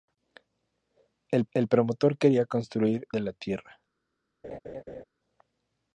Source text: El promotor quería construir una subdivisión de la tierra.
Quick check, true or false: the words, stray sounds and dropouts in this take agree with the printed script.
false